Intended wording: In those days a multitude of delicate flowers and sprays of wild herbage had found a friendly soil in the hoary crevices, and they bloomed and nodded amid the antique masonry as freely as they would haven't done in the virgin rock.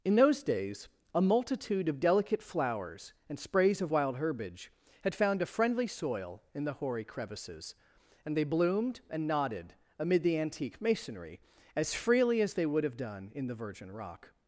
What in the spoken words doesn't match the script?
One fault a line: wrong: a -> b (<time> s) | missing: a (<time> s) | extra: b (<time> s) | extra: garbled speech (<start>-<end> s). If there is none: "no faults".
wrong: haven't -> have (12.8 s)